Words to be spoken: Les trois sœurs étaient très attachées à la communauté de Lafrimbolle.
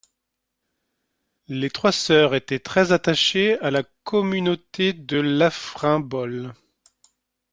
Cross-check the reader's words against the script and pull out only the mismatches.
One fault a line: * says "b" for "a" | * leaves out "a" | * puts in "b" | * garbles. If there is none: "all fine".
all fine